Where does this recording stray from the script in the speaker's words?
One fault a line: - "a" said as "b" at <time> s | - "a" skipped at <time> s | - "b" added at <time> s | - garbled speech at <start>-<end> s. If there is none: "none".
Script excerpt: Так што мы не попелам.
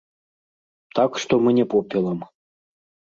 none